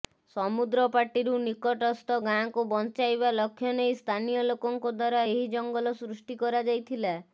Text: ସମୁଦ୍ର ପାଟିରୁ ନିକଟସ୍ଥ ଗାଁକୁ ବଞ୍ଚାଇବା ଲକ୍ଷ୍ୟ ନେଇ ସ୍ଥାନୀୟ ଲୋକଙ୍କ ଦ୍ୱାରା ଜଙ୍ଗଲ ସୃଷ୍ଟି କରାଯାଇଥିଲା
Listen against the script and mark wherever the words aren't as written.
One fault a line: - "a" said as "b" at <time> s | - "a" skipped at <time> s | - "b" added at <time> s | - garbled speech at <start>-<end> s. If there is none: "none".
- "ଏହି" added at 5.2 s